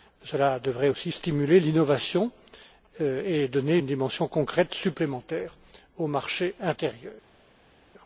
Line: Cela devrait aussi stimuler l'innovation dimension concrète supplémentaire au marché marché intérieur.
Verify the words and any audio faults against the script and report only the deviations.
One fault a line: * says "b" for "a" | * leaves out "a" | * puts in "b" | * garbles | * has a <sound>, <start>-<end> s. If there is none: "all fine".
* puts in "et donner une"
* leaves out "marché"